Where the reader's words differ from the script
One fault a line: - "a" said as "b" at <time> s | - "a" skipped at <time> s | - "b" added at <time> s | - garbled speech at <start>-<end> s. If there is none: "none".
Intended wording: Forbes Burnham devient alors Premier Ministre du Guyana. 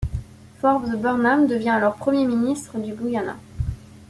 none